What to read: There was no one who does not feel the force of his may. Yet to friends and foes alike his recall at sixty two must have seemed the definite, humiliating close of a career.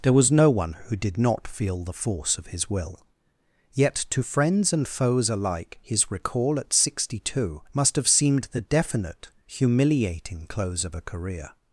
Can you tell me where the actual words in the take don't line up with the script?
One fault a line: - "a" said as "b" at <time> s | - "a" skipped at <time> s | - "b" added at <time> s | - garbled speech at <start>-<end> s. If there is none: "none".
- "does" said as "did" at 0.9 s
- "may" said as "will" at 2.7 s